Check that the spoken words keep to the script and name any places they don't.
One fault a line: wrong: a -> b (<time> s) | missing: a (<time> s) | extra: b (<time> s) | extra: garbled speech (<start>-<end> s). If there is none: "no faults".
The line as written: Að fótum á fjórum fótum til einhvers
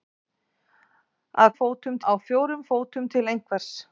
no faults